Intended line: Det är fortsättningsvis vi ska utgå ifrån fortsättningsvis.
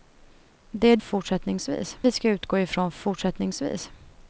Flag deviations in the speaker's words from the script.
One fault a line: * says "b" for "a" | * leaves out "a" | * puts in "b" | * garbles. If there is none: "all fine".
all fine